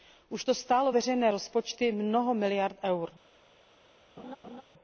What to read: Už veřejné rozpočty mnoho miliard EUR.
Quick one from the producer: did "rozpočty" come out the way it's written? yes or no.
yes